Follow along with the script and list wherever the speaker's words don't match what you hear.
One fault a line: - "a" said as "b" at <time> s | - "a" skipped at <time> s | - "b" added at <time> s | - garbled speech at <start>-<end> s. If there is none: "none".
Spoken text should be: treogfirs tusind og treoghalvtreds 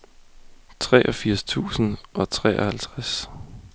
none